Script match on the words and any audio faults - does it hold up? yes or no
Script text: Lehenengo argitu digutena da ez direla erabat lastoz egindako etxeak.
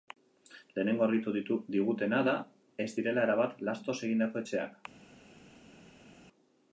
yes